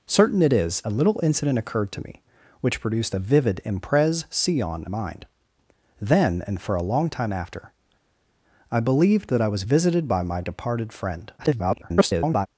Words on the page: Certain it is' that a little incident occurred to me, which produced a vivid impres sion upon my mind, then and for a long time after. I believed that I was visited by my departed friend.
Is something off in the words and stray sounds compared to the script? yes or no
yes